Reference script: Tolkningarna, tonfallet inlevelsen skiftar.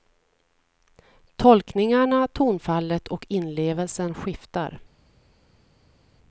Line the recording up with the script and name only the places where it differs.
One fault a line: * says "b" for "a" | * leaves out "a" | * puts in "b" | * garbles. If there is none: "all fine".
* puts in "och"